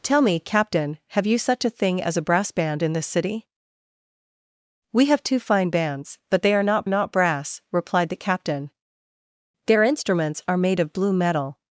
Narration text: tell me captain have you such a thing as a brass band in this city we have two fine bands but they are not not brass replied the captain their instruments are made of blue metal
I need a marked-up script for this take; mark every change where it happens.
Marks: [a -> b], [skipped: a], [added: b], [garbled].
tell me captain have you such a thing as a brass band in this city we have two fine bands but they are not not brass replied the captain their instruments are made of blue metal